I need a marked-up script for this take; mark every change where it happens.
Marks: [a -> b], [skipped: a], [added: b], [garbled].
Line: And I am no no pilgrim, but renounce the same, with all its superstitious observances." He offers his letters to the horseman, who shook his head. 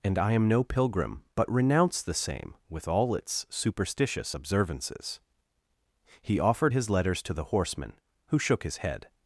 And I am no [skipped: no] pilgrim, but renounce the same, with all its superstitious observances." He [offers -> offered] his letters to the horseman, who shook his head.